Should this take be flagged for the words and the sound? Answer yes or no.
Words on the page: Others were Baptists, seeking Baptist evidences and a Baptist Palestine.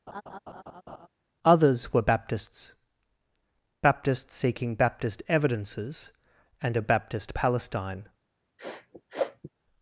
yes